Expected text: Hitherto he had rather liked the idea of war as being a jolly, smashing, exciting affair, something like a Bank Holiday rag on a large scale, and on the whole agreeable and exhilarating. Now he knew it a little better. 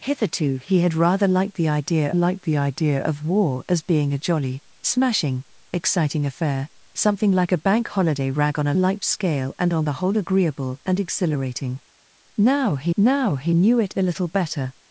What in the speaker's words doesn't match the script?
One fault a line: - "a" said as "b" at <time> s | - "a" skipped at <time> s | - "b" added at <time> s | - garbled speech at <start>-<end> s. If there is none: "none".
- "liked the idea" added at 2.1 s
- "large" said as "liked" at 8.8 s
- "now he" added at 13.0 s